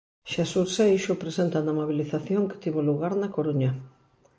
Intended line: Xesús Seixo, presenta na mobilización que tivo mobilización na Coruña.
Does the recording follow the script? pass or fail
fail